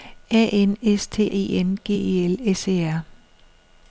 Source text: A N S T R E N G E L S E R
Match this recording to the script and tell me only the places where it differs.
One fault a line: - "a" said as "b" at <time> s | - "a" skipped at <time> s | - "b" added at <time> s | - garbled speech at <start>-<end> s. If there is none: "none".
- "R" skipped at 1.3 s